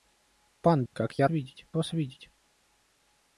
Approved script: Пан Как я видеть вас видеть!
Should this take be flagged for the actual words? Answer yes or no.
no